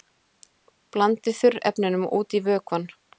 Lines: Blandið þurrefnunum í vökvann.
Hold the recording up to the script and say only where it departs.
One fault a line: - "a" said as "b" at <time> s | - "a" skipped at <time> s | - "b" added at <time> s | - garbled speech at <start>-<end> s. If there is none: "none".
- "út" added at 2.2 s